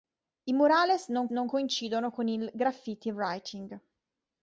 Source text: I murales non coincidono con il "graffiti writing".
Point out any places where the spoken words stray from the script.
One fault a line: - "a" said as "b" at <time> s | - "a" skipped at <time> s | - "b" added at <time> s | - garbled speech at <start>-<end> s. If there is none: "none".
- "non" added at 1.3 s